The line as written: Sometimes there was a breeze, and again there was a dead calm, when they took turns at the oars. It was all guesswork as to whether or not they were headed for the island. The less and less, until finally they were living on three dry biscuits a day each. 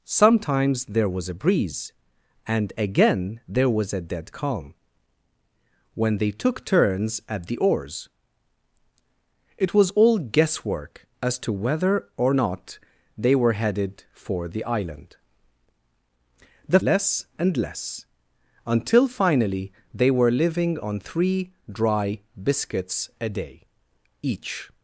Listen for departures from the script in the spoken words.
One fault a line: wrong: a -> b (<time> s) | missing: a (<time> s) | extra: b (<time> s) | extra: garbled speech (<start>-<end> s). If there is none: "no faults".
no faults